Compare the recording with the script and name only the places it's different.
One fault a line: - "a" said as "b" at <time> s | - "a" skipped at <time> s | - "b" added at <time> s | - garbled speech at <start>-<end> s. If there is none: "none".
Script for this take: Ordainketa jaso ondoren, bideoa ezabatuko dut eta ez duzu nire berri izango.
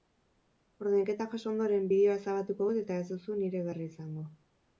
none